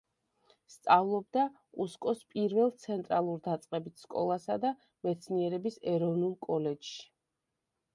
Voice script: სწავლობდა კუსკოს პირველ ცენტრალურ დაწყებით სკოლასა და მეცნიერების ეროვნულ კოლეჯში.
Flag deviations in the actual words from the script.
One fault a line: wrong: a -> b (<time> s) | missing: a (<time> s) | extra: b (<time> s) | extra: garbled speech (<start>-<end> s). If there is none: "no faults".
no faults